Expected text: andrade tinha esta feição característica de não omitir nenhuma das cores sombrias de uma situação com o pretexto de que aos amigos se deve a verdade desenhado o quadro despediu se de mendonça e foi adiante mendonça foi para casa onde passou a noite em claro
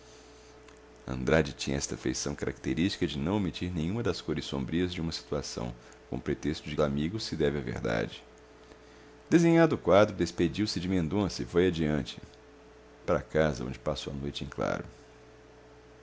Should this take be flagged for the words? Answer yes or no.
yes